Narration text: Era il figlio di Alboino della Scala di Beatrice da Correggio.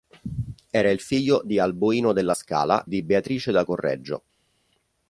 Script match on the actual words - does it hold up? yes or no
yes